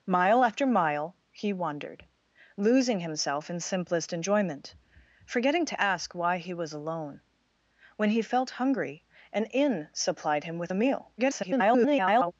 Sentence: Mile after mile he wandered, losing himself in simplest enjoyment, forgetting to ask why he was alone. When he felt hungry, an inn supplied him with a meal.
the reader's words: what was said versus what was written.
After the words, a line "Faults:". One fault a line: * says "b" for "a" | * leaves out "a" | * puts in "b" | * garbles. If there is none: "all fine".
Mile after mile he wandered, losing himself in simplest enjoyment, forgetting to ask why he was alone. When he felt hungry, an inn supplied him with a meal. [garbled]
Faults:
* garbles